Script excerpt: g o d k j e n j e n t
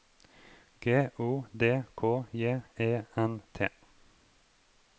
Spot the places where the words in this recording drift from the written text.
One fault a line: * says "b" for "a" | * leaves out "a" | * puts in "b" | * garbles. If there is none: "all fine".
* leaves out "j e n"